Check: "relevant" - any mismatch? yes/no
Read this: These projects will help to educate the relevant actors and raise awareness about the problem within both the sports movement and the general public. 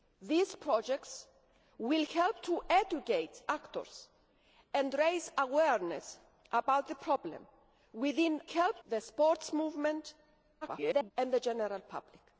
yes